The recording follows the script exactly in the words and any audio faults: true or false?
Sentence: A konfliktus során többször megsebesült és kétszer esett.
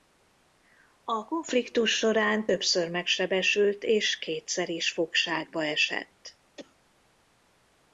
false